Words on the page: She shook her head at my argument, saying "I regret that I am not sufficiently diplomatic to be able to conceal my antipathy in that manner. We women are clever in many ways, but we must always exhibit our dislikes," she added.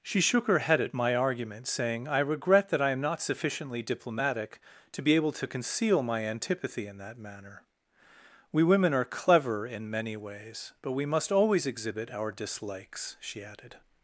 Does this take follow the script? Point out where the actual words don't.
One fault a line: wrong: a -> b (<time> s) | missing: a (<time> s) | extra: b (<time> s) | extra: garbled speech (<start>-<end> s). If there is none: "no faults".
no faults